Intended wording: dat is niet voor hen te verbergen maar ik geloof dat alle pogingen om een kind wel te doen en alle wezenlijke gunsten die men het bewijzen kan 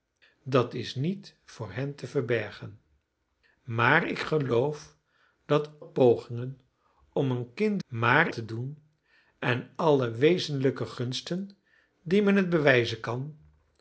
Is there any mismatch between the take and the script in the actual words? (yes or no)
yes